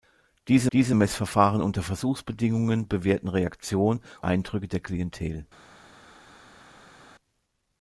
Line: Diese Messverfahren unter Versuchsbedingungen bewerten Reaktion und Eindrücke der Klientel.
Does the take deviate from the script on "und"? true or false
true